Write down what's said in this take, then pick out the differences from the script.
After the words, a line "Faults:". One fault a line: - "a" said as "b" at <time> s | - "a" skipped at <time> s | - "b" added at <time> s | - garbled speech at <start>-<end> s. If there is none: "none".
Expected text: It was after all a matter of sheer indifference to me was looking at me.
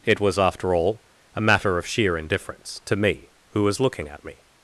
It was after all a matter of sheer indifference to me who was looking at me.
Faults:
- "who" added at 3.5 s